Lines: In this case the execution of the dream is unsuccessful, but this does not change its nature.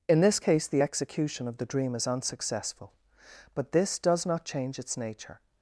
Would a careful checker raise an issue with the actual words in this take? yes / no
no